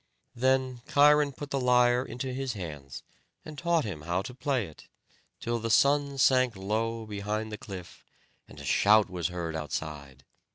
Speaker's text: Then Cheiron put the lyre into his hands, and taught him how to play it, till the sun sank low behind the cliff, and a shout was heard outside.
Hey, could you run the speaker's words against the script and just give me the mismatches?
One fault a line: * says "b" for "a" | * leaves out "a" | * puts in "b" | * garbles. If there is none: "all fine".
all fine